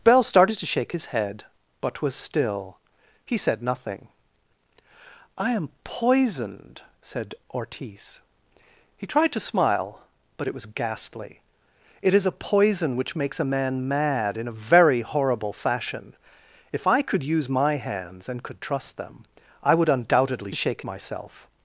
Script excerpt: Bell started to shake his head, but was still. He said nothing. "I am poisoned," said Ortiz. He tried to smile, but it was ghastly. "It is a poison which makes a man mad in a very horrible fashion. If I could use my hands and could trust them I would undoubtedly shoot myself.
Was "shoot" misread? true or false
true